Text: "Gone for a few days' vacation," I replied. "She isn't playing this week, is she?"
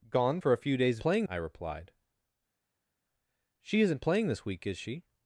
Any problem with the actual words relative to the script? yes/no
yes